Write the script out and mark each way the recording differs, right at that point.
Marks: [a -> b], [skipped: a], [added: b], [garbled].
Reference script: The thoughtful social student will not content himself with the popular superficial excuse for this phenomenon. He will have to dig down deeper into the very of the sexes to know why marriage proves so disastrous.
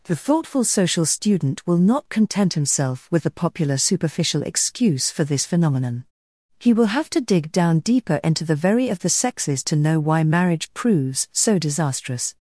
The thoughtful social student will not content himself with the popular superficial excuse for this phenomenon. He will have to dig down deeper into the very of the sexes to know why marriage proves so disastrous.